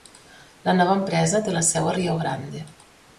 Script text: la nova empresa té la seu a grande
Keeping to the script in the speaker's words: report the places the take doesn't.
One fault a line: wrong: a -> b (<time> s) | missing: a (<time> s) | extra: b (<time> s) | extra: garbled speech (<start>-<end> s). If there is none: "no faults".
extra: rio (1.9 s)